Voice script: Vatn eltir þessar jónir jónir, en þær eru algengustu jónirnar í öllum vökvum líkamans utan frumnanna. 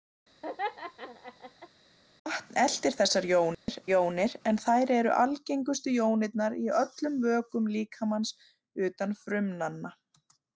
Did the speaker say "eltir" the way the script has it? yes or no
yes